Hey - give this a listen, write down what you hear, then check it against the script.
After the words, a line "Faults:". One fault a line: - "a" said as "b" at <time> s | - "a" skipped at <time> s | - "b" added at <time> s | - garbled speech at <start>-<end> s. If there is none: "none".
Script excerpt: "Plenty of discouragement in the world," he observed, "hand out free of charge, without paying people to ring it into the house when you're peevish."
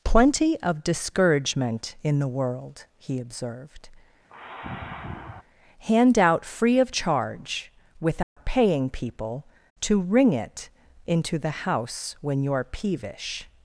"Plenty of discouragement in the world," he observed, "hand out free of charge, without paying people to ring it into the house when you're peevish."
Faults:
none